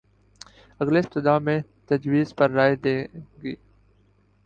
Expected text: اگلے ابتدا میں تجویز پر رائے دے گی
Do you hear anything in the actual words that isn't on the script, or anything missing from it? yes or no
no